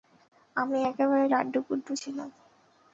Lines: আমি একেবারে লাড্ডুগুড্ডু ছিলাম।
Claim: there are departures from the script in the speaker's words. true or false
false